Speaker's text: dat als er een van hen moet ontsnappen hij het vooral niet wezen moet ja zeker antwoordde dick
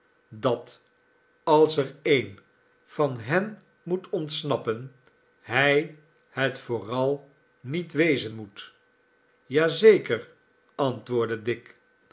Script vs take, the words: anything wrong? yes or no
no